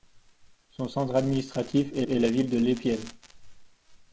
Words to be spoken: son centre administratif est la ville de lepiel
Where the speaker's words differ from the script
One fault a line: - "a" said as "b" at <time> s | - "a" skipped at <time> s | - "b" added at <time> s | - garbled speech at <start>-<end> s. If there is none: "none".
- "est" added at 2.1 s